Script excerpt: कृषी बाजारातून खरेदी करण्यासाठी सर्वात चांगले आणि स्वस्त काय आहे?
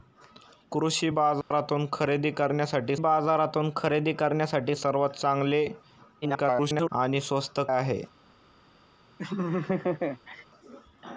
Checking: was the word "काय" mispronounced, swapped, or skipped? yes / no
yes